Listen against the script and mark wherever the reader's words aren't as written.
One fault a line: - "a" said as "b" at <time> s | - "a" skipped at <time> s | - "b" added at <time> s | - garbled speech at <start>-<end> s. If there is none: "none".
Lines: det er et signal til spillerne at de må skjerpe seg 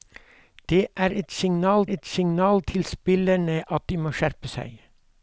- "et signal" added at 2.0 s